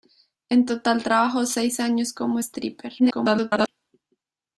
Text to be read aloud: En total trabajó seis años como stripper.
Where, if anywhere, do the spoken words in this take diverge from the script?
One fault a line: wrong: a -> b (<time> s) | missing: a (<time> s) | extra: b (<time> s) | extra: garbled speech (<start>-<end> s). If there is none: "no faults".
extra: garbled speech (3.0-3.7 s)